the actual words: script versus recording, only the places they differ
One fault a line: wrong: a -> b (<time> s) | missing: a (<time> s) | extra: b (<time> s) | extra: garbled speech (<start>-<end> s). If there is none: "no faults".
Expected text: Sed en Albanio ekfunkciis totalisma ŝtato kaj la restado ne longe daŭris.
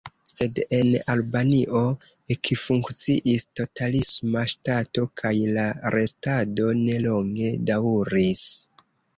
no faults